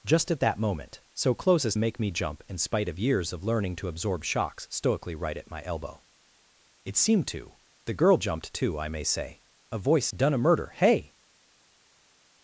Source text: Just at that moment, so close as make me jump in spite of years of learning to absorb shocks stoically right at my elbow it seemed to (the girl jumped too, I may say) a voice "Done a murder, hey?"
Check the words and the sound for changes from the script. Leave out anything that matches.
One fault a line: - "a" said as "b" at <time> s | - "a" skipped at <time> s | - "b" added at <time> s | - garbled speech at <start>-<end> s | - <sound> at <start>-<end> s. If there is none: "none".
none